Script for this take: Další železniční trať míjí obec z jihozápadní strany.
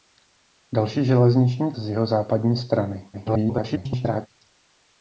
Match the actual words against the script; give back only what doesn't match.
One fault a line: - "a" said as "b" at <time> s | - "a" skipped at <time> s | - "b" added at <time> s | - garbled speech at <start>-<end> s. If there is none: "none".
- "trať míjí obec" skipped at 1.7 s
- garbled speech at 3.1-4.3 s